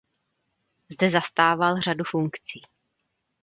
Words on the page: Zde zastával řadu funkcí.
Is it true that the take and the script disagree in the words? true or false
false